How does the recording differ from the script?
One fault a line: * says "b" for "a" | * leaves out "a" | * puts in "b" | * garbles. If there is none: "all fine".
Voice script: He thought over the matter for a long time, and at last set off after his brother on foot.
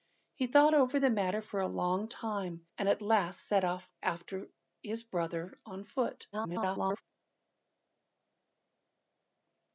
* garbles